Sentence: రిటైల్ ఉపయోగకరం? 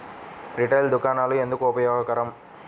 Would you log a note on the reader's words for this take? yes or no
yes